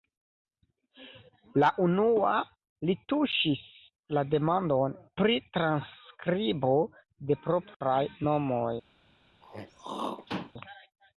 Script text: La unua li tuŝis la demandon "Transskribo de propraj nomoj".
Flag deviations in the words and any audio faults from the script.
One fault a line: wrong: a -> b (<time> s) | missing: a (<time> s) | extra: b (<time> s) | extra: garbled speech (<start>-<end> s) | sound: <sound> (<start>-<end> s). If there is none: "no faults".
extra: Pri (5.2 s)
sound: throat clearing (9.4-10.5 s)